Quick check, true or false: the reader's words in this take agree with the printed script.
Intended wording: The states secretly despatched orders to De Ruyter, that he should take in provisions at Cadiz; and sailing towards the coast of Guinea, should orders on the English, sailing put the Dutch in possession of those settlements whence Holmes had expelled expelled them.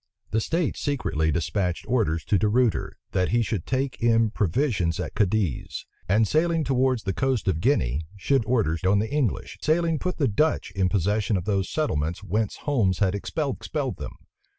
true